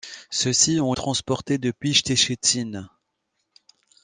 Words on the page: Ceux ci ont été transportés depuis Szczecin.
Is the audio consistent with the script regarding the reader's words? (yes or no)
no